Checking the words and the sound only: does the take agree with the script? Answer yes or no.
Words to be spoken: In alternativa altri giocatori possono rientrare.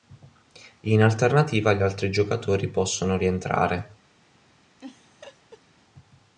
no